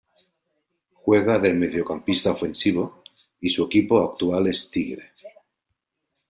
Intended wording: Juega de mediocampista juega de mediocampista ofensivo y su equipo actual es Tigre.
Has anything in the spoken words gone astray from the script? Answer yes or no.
yes